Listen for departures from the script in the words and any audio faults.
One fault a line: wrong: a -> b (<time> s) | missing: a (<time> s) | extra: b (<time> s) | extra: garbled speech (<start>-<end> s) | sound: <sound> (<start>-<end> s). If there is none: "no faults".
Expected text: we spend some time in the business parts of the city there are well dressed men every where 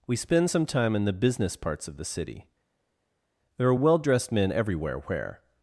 wrong: every -> everywhere (4.5 s)